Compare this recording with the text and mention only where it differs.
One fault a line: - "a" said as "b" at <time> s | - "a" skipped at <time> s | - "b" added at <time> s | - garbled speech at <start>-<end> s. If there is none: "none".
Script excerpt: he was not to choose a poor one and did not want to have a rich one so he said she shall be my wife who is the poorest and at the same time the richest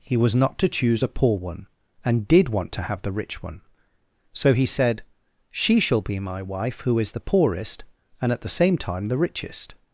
- "not" skipped at 2.5 s
- "a" said as "the" at 3.0 s